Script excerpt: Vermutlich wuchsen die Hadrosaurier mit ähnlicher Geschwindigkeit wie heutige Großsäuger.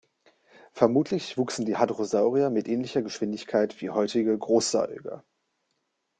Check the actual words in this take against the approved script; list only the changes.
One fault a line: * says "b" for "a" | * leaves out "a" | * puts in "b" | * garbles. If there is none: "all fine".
all fine